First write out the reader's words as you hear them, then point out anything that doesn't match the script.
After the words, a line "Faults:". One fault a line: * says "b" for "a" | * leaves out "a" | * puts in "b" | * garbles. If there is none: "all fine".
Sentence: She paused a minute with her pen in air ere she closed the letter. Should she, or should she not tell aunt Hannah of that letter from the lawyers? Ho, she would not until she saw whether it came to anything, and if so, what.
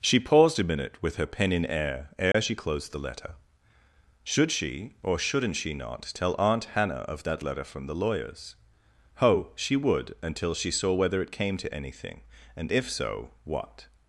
She paused a minute with her pen in air ere she closed the letter. Should she, or shouldn't she not tell aunt Hannah of that letter from the lawyers? Ho, she would until she saw whether it came to anything, and if so, what.
Faults:
* says "shouldn't" for "should"
* leaves out "not"